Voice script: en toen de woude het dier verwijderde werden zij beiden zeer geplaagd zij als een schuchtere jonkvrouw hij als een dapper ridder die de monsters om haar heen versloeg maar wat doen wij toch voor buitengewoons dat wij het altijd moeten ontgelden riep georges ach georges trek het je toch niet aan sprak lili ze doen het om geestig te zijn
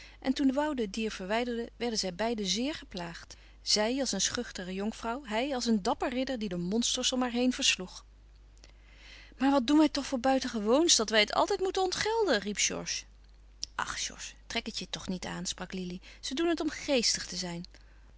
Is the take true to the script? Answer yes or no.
yes